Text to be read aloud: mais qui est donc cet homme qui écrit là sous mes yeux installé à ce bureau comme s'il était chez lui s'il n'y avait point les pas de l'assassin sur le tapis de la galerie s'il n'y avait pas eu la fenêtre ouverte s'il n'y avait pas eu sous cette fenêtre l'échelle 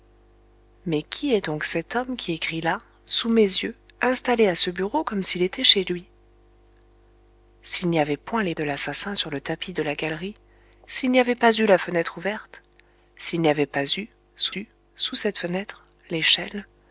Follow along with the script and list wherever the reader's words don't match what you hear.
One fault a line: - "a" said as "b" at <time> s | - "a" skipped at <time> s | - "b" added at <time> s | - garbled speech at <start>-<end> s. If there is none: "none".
- "pas" skipped at 8.6 s
- "eu sous" added at 14.5 s